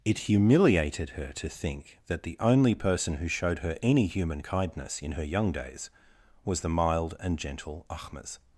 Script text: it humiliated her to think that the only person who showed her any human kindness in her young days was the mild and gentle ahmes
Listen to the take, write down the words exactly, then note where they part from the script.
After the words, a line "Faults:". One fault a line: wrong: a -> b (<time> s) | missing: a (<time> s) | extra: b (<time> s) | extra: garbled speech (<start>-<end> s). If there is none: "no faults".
it humiliated her to think that the only person who showed her any human kindness in her young days was the mild and gentle ahmes
Faults:
no faults